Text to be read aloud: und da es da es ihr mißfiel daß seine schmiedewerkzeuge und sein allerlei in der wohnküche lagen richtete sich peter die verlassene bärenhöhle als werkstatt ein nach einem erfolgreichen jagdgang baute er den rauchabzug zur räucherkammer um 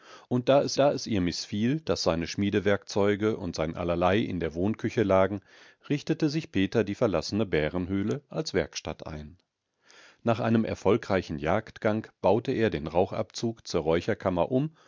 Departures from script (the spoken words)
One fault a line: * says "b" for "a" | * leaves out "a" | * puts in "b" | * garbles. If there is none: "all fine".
all fine